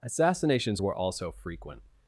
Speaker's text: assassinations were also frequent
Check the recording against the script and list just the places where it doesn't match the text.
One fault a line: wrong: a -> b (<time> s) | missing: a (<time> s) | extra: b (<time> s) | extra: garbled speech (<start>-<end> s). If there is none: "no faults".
no faults